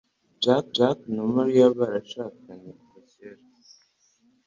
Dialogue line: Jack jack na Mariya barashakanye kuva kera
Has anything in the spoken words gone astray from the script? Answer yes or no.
no